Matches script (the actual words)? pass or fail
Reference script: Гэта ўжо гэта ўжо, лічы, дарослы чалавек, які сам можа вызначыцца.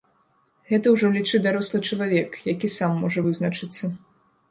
fail